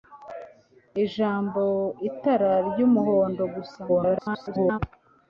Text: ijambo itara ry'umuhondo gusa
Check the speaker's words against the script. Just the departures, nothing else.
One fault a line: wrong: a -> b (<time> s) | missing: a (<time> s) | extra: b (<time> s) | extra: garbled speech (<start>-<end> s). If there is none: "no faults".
extra: garbled speech (3.9-4.8 s)